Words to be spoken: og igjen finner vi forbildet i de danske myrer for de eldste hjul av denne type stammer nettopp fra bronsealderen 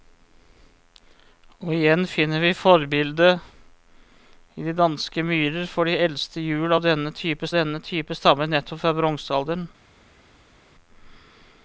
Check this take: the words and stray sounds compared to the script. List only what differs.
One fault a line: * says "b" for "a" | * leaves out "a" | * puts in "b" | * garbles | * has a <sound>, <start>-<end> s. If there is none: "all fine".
* puts in "denne type"